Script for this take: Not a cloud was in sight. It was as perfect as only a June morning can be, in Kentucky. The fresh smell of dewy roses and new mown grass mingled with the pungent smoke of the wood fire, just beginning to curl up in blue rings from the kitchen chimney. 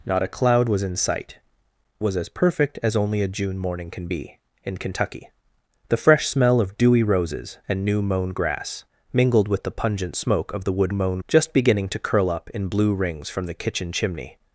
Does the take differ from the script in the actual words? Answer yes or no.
yes